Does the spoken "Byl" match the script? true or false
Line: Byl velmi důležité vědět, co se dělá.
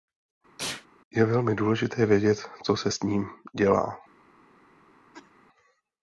false